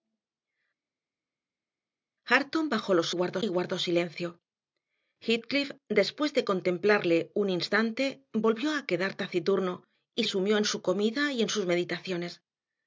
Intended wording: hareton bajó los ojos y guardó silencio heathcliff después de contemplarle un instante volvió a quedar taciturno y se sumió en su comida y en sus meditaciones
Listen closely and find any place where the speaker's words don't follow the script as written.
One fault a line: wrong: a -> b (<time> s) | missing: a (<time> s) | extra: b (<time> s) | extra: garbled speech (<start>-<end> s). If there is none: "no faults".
wrong: ojos -> guardó (3.1 s)
missing: se (10.2 s)